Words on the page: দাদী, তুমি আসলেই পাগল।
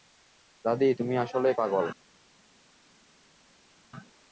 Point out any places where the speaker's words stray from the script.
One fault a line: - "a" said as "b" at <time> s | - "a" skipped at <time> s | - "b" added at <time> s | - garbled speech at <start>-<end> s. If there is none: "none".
none